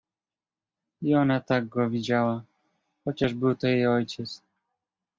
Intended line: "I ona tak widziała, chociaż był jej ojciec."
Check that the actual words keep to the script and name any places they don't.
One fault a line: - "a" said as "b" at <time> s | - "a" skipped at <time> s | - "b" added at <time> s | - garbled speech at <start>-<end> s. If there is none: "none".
- "go" added at 1.7 s
- "to" added at 3.5 s